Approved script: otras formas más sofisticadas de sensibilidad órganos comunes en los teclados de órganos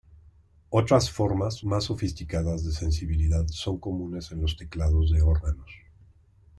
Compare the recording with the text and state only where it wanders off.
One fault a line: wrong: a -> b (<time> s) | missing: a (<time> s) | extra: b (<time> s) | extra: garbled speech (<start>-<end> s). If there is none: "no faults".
wrong: órganos -> son (3.5 s)